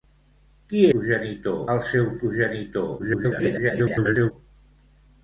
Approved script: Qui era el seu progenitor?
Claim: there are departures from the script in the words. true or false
true